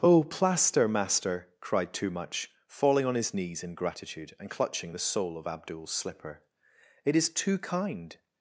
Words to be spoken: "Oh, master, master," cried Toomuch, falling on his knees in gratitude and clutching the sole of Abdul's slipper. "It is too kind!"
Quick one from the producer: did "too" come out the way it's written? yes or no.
yes